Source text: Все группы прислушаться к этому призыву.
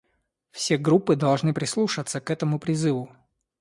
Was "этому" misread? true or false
false